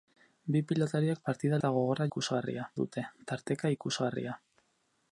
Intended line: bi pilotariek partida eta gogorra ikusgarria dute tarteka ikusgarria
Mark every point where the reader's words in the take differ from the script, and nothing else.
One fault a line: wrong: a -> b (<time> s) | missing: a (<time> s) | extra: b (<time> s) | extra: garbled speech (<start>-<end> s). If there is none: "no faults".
no faults